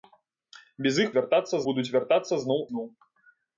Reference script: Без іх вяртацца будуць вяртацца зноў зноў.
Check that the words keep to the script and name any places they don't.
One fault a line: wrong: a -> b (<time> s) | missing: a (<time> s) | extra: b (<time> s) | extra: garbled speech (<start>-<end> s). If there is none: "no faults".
no faults